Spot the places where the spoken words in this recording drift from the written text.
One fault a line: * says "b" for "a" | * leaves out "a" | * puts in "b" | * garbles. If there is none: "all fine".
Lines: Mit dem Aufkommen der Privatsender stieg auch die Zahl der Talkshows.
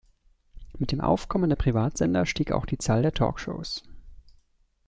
all fine